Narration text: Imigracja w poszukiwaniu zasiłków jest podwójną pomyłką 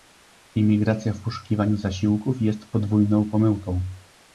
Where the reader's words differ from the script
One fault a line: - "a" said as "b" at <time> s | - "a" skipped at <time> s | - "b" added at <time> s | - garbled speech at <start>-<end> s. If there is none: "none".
none